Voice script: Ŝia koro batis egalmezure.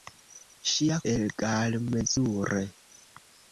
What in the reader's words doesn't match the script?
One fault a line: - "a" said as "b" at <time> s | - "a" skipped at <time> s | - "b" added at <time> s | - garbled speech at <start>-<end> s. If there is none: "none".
- "koro batis" skipped at 1.0 s